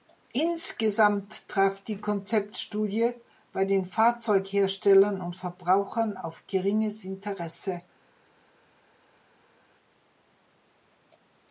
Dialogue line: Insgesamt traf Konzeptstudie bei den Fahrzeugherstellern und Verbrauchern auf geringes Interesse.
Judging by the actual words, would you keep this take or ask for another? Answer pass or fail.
fail